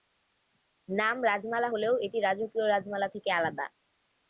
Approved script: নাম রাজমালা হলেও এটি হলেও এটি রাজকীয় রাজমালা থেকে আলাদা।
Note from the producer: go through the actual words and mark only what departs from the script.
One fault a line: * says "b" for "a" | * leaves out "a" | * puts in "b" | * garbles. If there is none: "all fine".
* leaves out "হলেও এটি"